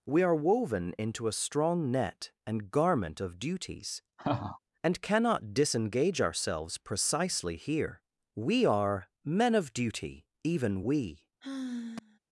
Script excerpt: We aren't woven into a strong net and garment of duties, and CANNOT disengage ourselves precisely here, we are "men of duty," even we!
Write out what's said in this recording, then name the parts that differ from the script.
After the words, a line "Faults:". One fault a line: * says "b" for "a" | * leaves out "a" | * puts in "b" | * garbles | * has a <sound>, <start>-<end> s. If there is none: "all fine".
We are woven into a strong net and garment of duties, and CANNOT disengage ourselves precisely here, we are "men of duty," even we!
Faults:
* says "are" for "aren't"
* has a laugh, 4.2-4.6 s
* has a sigh, 11.4-12.2 s